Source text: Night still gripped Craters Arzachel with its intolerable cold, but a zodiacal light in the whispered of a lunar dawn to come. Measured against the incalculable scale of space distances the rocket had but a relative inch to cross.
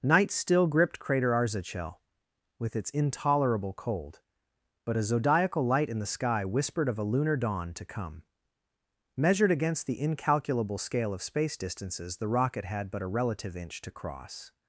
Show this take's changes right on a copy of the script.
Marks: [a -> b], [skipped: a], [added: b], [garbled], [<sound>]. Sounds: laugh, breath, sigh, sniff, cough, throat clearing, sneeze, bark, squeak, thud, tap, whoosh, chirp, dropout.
Night still gripped [Craters -> Crater] Arzachel with its intolerable cold, but a zodiacal light in the [added: sky] whispered of a lunar dawn to come. Measured against the incalculable scale of space distances the rocket had but a relative inch to cross.